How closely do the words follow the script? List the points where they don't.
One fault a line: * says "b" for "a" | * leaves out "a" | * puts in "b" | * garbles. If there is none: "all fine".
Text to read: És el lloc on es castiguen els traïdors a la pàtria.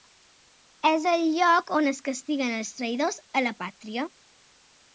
all fine